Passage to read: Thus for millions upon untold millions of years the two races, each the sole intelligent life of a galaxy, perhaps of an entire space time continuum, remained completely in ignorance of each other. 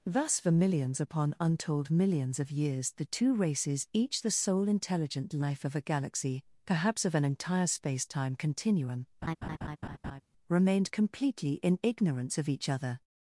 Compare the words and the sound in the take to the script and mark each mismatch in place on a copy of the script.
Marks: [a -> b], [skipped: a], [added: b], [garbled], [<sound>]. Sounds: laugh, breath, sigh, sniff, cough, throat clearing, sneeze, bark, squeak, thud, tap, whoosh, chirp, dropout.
Thus for millions upon untold millions of years the two races, each the sole intelligent life of a galaxy, perhaps of an entire space time continuum, [laugh] remained completely in ignorance of each other.